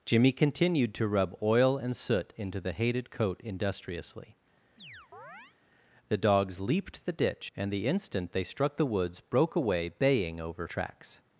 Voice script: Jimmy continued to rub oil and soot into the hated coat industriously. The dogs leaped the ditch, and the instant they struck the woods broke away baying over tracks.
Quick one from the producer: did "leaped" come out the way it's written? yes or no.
yes